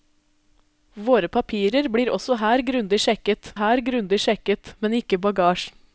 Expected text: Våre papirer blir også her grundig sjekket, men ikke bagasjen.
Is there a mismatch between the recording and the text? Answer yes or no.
yes